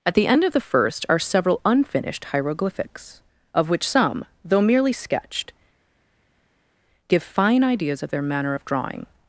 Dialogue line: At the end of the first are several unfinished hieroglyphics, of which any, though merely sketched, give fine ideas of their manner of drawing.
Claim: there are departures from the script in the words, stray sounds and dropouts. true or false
true